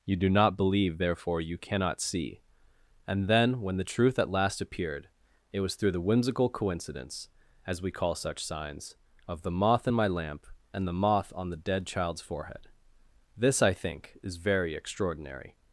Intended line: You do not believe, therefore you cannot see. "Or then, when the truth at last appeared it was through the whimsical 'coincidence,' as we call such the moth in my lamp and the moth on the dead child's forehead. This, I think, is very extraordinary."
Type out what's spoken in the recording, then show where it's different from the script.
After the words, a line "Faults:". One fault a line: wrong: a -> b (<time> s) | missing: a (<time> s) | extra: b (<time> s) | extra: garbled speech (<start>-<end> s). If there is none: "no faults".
You do not believe, therefore you cannot see. "And then, when the truth at last appeared it was through the whimsical 'coincidence,' as we call such signs, of the moth in my lamp and the moth on the dead child's forehead. This, I think, is very extraordinary."
Faults:
wrong: Or -> And (3.1 s)
extra: signs of (8.4 s)